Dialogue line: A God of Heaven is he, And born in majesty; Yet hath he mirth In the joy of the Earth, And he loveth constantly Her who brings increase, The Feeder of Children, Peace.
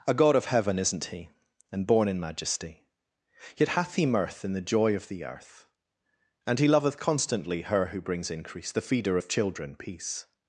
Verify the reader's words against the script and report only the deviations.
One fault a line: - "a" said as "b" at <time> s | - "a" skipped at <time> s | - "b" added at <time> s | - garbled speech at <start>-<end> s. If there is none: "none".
- "is" said as "isn't" at 0.8 s